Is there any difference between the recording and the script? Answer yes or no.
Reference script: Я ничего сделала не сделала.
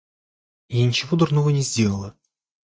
yes